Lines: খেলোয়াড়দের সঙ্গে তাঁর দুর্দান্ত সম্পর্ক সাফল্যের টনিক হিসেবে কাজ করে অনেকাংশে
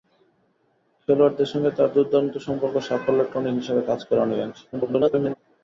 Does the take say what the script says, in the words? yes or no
no